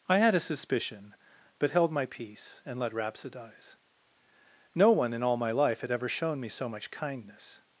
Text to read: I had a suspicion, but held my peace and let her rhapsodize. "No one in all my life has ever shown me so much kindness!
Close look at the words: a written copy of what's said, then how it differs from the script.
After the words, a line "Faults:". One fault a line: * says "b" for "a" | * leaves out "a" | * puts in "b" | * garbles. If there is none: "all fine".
I had a suspicion, but held my peace and let rhapsodize. "No one in all my life had ever shown me so much kindness!
Faults:
* leaves out "her"
* says "had" for "has"